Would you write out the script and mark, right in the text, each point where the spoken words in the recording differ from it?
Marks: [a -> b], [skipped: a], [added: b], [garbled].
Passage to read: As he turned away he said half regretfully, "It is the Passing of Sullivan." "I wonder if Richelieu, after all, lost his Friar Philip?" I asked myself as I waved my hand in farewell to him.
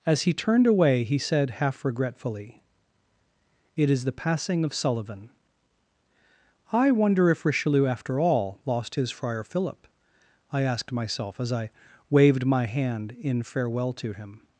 As he turned away he said half regretfully, "It is the Passing of Sullivan." "I wonder if Richelieu, after all, lost his Friar Philip?" I asked myself as I waved my hand in farewell to him.